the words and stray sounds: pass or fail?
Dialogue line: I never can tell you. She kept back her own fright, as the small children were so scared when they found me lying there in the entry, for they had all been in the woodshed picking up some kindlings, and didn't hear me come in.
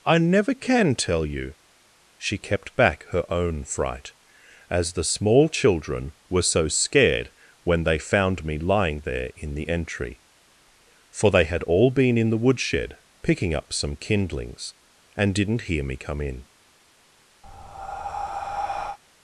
fail